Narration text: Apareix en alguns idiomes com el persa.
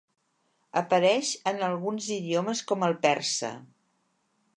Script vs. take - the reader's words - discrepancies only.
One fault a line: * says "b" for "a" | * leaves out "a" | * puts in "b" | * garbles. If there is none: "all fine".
all fine